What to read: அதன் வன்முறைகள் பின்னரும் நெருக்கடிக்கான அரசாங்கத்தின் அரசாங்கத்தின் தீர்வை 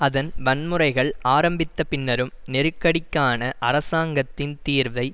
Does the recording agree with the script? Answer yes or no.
no